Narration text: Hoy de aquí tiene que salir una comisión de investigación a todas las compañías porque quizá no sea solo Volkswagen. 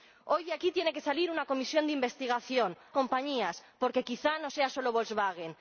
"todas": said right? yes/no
no